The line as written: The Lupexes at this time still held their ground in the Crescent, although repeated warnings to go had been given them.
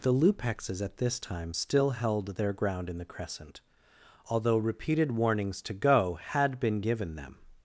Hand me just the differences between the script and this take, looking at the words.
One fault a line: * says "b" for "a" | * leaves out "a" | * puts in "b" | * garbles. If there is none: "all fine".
all fine